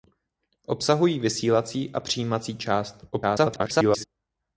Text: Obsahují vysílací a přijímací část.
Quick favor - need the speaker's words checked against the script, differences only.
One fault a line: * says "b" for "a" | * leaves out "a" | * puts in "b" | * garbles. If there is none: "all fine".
* garbles